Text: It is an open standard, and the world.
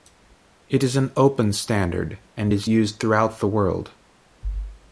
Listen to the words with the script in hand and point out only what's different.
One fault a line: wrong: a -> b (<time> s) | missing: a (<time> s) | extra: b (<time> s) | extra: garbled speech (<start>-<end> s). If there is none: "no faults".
extra: is used throughout (2.5 s)